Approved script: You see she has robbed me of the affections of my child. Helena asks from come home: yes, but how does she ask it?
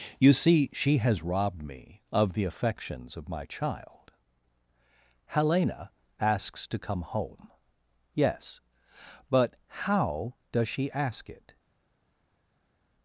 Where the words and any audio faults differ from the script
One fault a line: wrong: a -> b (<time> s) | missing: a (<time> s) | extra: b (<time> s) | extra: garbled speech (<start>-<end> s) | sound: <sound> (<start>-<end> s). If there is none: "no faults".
wrong: from -> to (6.7 s)